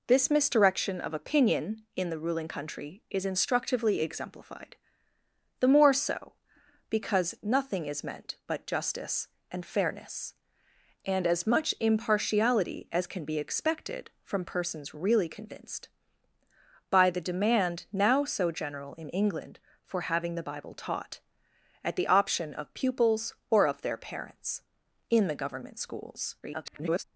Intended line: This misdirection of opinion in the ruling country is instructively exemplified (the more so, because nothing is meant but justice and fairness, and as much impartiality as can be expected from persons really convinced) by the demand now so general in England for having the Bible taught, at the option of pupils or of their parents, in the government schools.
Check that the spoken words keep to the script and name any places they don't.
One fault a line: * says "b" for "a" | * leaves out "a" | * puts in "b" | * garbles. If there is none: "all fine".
* garbles